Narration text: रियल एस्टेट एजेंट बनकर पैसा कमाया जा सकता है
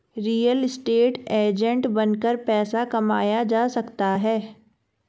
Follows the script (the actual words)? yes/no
yes